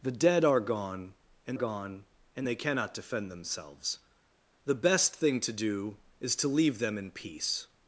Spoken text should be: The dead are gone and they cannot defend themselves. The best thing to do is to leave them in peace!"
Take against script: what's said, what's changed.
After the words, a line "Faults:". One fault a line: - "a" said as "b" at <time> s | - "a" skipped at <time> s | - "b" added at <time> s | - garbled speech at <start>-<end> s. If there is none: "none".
The dead are gone and gone and they cannot defend themselves. The best thing to do is to leave them in peace!"
Faults:
- "gone and" added at 1.5 s